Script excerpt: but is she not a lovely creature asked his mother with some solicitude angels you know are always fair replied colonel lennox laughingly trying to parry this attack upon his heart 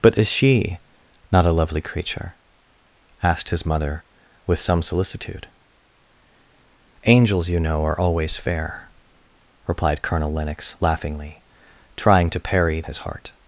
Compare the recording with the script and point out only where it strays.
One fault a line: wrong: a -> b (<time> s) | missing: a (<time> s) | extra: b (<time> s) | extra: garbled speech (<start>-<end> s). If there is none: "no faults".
missing: this attack upon (12.8 s)